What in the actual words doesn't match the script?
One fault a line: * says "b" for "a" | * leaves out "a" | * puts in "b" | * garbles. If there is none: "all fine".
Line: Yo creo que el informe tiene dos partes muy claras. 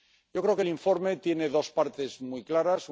all fine